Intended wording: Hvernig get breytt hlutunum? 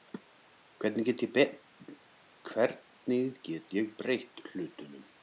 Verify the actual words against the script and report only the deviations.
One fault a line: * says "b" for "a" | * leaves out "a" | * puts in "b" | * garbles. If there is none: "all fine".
* puts in "ég"